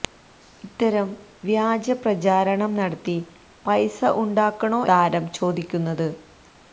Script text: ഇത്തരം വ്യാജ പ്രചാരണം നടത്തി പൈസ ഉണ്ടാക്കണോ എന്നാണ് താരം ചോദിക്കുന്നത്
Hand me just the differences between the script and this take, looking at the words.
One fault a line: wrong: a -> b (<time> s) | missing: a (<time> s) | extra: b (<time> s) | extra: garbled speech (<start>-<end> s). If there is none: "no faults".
missing: എന്നാണ് (4.8 s)